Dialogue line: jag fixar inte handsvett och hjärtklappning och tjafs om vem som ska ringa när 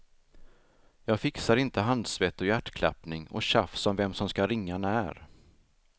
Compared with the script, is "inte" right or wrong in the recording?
right